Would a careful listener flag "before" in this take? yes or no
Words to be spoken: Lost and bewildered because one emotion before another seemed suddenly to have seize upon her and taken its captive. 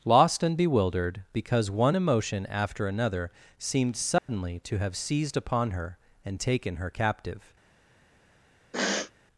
yes